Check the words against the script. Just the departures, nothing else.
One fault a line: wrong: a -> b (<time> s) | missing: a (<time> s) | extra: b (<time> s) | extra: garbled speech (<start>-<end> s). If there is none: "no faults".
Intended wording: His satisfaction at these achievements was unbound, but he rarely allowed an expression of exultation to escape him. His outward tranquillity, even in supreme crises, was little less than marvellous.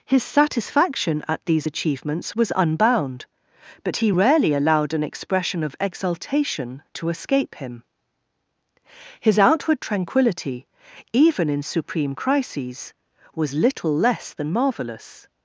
no faults